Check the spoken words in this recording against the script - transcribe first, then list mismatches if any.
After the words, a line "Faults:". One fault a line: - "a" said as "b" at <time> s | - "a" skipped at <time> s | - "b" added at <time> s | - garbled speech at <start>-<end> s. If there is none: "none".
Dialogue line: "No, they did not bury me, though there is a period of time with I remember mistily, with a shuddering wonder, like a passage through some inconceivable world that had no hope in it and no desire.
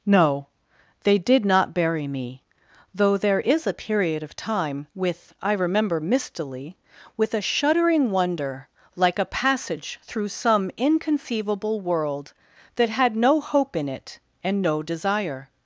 "No, they did not bury me, though there is a period of time with I remember mistily, with a shuddering wonder, like a passage through some inconceivable world that had no hope in it and no desire.
Faults:
none